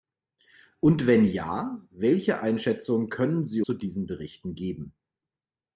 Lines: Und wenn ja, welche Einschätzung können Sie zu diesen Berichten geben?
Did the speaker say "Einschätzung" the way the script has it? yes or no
yes